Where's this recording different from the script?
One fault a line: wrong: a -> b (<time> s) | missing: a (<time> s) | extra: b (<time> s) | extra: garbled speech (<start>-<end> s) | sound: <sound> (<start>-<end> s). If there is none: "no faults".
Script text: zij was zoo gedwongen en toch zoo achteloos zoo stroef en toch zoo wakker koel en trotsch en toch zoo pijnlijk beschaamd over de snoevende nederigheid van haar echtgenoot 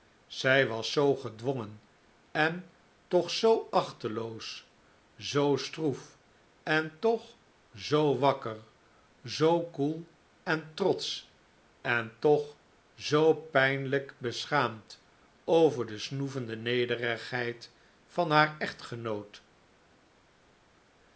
extra: zoo (9.2 s)